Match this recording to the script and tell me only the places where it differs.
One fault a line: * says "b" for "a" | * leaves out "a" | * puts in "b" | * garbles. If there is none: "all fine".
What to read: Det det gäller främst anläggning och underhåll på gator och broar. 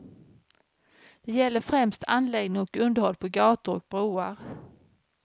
* leaves out "det"